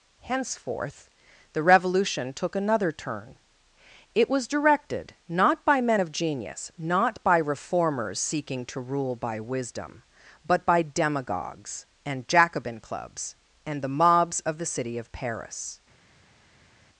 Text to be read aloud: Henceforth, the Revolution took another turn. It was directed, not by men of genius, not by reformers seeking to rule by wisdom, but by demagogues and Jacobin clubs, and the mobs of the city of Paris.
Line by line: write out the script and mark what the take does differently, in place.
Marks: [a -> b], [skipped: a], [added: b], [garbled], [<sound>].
Henceforth, the Revolution took another turn. It was directed, not by men of genius, not by reformers seeking to rule by wisdom, but by demagogues and Jacobin clubs, and the mobs of the city of Paris.